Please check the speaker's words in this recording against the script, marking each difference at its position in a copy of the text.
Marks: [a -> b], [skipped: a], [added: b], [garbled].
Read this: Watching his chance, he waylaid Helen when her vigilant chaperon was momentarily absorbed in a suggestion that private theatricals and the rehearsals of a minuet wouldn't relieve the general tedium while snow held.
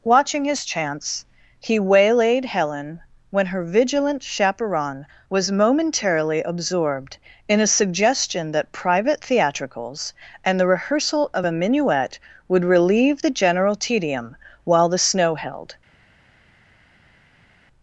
Watching his chance, he waylaid Helen when her vigilant chaperon was momentarily absorbed in a suggestion that private theatricals and the [rehearsals -> rehearsal] of a minuet [wouldn't -> would] relieve the general tedium while [added: the] snow held.